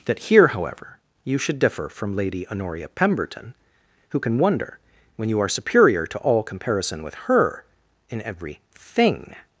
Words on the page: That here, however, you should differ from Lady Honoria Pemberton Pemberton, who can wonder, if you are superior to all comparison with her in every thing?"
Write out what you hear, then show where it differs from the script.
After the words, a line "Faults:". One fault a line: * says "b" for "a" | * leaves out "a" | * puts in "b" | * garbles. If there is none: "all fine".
That here, however, you should differ from Lady Honoria Pemberton, who can wonder, when you are superior to all comparison with her in every thing?"
Faults:
* leaves out "Pemberton"
* says "when" for "if"